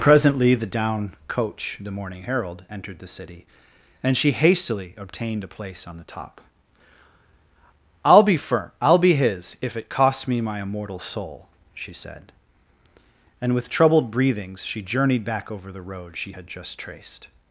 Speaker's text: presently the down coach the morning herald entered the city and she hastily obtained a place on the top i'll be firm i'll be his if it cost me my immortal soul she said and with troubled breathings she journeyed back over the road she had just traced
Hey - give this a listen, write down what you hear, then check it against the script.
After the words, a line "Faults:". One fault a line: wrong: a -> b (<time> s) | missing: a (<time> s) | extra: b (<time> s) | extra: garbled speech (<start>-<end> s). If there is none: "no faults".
presently the down coach the morning herald entered the city and she hastily obtained a place on the top i'll be firm i'll be his if it costs me my immortal soul she said and with troubled breathings she journeyed back over the road she had just traced
Faults:
wrong: cost -> costs (9.9 s)